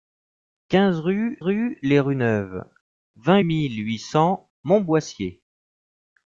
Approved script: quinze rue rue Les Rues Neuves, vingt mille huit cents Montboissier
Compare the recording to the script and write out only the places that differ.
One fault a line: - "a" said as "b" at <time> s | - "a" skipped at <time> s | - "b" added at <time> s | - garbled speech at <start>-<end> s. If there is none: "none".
none